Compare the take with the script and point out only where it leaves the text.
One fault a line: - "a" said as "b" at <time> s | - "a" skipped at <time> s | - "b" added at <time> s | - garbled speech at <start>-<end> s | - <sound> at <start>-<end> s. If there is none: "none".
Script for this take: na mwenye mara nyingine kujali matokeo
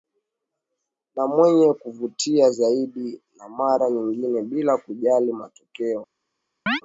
- "kuvutia zaidi na" added at 1.7 s
- "bila" added at 4.4 s
- chirp at 6.7-6.8 s